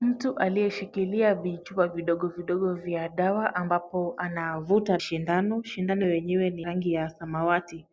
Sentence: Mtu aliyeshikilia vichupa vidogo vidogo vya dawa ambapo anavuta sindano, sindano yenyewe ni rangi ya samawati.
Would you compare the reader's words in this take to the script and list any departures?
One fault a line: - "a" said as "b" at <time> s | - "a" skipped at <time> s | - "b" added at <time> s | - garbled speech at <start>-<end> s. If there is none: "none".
none